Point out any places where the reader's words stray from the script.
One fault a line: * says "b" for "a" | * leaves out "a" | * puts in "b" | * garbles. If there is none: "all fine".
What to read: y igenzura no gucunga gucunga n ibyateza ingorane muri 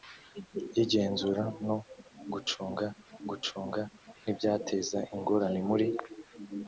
all fine